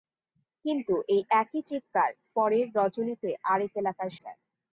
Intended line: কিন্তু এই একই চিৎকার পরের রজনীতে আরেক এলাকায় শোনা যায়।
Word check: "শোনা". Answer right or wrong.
wrong